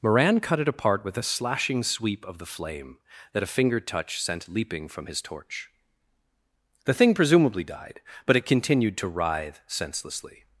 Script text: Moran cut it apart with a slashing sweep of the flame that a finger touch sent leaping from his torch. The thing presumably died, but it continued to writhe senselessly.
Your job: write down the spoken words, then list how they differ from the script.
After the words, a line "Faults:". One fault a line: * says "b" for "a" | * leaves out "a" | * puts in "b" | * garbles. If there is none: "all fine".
Moran cut it apart with a slashing sweep of the flame that a finger touch sent leaping from his torch. The thing presumably died, but it continued to writhe senselessly.
Faults:
all fine